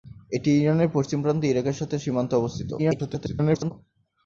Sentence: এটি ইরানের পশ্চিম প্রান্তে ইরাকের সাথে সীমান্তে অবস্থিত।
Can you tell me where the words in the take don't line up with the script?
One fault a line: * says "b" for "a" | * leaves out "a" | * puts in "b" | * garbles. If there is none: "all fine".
* garbles